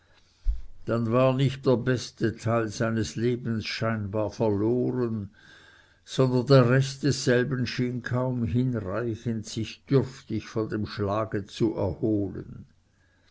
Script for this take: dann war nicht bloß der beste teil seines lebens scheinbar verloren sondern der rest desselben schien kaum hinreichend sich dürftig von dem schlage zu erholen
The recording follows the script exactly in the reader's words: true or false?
false